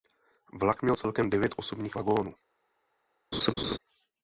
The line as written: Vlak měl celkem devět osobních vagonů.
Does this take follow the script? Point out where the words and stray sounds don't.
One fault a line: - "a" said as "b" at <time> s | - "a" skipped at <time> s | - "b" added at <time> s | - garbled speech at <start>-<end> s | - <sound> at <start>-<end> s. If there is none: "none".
- laugh at 3.3-3.8 s